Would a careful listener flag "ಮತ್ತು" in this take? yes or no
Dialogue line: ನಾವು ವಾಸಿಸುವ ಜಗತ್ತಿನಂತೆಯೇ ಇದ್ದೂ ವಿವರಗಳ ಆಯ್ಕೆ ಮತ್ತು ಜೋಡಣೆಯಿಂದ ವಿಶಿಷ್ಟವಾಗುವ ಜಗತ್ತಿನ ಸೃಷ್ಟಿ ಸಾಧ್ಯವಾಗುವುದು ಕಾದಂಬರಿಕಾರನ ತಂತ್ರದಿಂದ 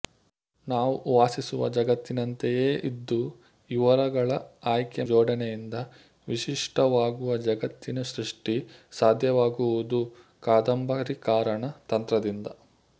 yes